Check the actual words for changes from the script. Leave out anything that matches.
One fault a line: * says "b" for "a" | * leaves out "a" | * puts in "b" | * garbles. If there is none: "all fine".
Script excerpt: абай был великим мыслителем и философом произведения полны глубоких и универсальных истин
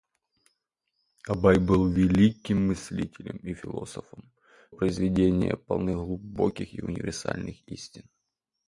all fine